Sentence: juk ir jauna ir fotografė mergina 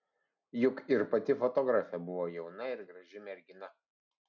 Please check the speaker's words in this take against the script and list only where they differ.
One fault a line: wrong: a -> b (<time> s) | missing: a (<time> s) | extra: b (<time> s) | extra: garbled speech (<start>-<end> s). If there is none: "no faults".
extra: pati fotografė buvo (1.1 s)
wrong: fotografė -> graži (2.9 s)